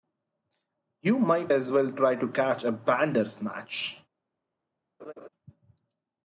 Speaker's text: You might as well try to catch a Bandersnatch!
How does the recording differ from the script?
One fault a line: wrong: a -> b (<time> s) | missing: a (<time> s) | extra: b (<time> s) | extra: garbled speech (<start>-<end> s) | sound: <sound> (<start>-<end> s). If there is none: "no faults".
sound: laugh (5.0-5.3 s)